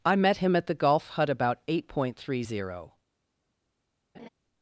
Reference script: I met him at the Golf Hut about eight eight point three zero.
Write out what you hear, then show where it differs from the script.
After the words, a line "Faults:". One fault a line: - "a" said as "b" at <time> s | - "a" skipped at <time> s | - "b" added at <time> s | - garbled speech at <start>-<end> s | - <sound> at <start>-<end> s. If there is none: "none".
I met him at the Golf Hut about eight point three zero.
Faults:
- "eight" skipped at 1.9 s
- laugh at 4.1-4.3 s